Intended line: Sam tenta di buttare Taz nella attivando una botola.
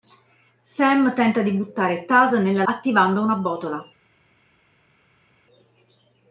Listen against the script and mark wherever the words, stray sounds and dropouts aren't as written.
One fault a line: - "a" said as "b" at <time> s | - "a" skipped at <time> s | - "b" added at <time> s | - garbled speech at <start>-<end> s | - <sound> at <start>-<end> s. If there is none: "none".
none